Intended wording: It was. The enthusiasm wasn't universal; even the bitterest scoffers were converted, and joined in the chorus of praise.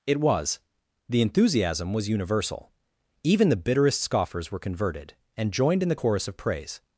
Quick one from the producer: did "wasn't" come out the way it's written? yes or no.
no